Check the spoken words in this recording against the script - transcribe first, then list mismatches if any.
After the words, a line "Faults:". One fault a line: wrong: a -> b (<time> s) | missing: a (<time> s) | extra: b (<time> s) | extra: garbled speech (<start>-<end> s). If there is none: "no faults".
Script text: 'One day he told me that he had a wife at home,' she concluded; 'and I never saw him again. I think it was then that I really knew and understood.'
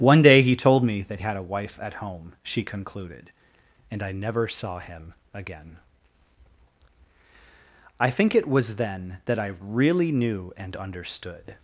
'One day he told me that had a wife at home,' she concluded; 'and I never saw him again. I think it was then that I really knew and understood.'
Faults:
missing: he (1.2 s)